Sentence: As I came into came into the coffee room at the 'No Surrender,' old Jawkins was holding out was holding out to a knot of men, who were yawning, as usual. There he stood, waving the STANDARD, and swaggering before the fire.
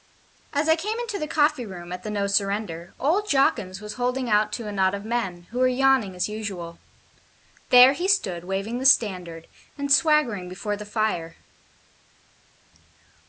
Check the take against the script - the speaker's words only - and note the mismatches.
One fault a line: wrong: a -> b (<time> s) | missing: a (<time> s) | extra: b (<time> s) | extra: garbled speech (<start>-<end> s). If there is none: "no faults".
missing: came into (1.2 s)
missing: was holding out (4.5 s)